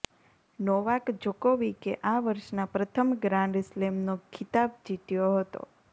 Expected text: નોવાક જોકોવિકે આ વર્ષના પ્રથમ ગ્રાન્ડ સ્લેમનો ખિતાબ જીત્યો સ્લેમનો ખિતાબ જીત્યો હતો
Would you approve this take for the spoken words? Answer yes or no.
no